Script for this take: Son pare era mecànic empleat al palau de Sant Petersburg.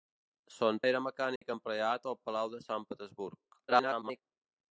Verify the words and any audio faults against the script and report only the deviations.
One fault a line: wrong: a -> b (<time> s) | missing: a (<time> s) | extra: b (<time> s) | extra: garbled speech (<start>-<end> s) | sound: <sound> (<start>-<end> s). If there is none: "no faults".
missing: pare (0.8 s)
sound: dropout (1.4-1.4 s)
extra: garbled speech (3.7-4.2 s)